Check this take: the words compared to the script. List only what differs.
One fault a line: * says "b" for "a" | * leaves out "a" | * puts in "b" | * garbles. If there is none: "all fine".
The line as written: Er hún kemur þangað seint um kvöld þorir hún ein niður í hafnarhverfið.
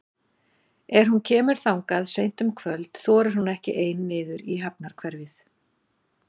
* puts in "ekki"